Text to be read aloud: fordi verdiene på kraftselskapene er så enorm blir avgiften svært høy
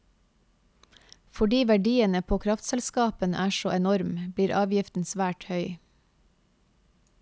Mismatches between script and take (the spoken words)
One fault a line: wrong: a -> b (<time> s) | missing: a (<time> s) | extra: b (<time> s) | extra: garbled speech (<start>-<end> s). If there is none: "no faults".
no faults